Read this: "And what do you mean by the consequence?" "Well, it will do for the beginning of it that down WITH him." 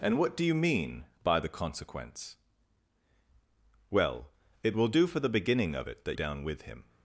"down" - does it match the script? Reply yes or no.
yes